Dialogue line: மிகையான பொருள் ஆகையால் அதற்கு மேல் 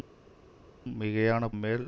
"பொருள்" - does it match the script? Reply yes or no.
no